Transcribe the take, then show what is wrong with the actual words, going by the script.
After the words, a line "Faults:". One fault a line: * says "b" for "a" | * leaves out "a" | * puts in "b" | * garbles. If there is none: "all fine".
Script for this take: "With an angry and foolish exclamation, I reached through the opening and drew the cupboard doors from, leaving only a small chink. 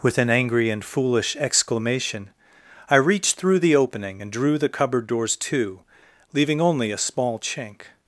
"With an angry and foolish exclamation, I reached through the opening and drew the cupboard doors to, leaving only a small chink.
Faults:
* says "to" for "from"